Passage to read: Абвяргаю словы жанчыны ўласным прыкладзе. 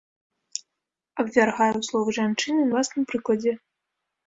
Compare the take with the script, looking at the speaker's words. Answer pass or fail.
pass